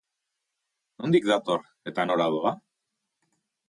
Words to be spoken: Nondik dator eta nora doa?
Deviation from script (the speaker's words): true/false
false